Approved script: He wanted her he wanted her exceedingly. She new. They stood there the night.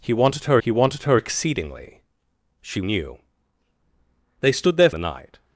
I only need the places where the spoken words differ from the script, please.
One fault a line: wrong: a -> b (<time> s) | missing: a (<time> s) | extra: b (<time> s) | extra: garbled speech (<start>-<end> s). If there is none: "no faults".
no faults